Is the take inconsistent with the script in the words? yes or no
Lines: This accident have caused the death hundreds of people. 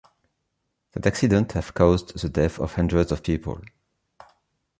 yes